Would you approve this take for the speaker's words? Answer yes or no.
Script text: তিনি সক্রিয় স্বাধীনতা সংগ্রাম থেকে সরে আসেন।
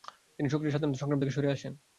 yes